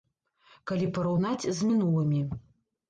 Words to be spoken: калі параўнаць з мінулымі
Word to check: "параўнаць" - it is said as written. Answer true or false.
true